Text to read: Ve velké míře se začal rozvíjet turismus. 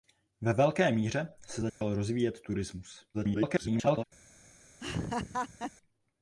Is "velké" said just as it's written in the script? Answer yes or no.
yes